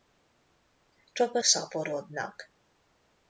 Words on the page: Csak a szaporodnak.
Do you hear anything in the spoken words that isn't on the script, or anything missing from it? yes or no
no